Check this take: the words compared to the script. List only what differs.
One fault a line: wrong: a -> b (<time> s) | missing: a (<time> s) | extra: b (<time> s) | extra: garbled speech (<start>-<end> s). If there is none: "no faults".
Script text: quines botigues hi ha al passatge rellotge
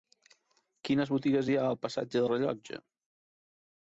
no faults